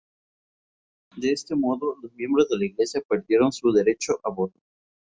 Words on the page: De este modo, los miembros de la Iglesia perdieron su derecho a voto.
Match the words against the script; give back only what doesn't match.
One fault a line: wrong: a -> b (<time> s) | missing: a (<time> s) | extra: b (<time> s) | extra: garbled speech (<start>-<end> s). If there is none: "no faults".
no faults